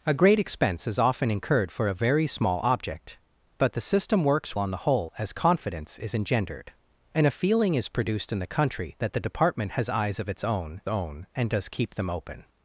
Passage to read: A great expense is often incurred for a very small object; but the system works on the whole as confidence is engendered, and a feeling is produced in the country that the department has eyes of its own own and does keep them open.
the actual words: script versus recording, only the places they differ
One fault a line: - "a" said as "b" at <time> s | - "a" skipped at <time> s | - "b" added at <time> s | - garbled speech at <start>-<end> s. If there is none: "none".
none